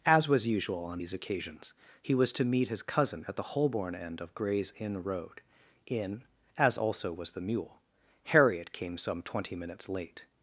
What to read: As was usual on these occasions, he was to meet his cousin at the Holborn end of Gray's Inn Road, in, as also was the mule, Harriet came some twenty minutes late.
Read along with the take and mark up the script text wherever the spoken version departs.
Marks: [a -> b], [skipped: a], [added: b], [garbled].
As was usual on these occasions, he was to meet his cousin at the Holborn end of Gray's Inn Road, in, as also was the mule, Harriet came some twenty minutes late.